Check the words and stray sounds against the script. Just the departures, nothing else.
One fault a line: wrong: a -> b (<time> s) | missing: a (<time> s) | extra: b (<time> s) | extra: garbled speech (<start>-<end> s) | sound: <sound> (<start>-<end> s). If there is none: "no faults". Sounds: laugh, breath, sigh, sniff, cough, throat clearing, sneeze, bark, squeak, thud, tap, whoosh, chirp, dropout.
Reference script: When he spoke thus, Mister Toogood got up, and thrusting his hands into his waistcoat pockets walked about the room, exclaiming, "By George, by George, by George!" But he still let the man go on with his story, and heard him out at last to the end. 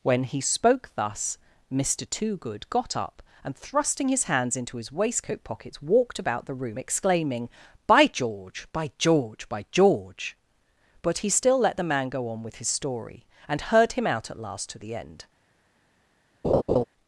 sound: laugh (16.4-16.8 s)